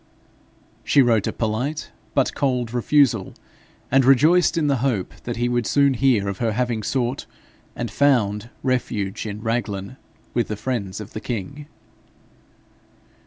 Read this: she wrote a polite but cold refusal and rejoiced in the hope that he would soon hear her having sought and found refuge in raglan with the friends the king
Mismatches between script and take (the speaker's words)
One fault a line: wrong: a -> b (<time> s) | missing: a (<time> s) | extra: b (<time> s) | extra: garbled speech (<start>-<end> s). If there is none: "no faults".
extra: of (6.3 s)
extra: of (11.0 s)